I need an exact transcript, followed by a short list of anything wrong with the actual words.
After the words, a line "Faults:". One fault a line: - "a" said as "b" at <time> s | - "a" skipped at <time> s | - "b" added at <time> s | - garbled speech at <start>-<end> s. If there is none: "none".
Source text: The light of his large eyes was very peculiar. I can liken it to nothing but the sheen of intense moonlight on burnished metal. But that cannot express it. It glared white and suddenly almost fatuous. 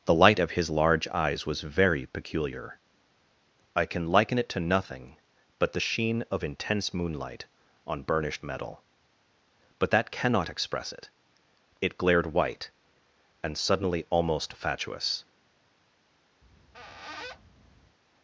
The light of his large eyes was very peculiar. I can liken it to nothing but the sheen of intense moonlight on burnished metal. But that cannot express it. It glared white and suddenly almost fatuous.
Faults:
none